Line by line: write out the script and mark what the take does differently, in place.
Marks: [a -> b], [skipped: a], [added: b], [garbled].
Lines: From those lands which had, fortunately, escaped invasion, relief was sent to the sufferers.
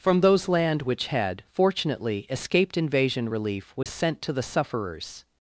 From those [lands -> land] which had, fortunately, escaped invasion, relief was sent to the sufferers.